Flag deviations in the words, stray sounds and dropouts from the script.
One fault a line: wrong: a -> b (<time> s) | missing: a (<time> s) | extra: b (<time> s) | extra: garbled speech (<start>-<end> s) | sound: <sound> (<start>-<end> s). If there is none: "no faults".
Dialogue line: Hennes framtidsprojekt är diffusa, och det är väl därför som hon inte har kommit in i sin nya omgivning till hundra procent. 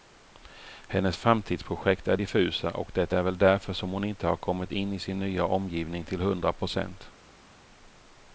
no faults